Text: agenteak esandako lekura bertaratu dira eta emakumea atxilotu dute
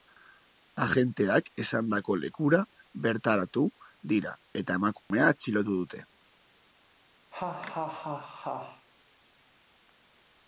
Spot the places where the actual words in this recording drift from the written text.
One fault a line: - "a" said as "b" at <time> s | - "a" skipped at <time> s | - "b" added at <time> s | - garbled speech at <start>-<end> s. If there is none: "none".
none